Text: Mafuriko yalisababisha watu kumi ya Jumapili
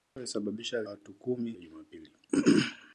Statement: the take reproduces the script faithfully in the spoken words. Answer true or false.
true